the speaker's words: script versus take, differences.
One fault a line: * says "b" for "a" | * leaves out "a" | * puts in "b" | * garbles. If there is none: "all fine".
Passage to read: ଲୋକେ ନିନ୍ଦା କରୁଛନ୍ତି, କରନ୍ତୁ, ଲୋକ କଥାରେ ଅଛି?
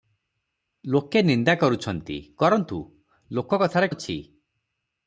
all fine